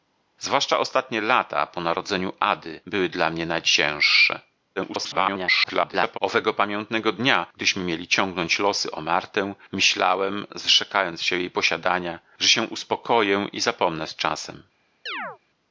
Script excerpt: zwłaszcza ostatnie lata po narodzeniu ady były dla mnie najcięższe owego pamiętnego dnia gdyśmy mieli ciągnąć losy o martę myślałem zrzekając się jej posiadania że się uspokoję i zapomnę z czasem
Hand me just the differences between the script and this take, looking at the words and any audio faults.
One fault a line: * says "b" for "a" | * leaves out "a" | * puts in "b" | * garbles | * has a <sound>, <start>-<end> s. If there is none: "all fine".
* garbles
* has a chirp, 15.1-15.4 s